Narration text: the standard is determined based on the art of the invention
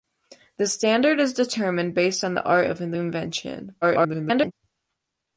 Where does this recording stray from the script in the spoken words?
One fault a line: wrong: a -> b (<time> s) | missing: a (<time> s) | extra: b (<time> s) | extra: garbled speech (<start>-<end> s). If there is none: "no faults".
extra: garbled speech (3.8-4.5 s)